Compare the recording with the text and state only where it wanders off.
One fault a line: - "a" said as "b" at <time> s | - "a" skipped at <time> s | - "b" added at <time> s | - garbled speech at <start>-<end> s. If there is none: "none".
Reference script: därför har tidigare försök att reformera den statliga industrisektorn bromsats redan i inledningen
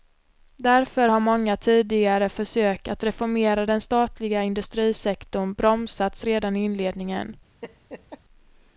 - "många" added at 1.2 s